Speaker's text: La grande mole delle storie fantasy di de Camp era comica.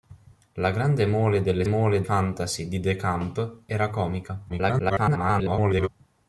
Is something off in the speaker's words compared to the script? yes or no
yes